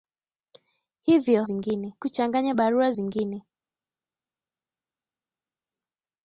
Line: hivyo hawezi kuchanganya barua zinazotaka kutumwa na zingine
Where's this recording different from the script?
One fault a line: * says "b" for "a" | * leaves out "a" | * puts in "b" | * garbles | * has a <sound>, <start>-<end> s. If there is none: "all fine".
* says "zingine" for "hawezi"
* leaves out "zinazotaka kutumwa na"